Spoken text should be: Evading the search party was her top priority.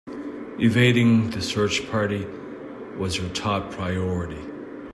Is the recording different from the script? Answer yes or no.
no